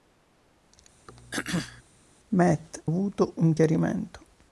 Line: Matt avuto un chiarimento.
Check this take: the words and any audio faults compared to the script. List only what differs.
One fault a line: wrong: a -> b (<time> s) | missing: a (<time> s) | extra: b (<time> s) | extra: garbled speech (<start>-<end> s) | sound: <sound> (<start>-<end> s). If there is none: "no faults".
sound: throat clearing (1.1-1.8 s)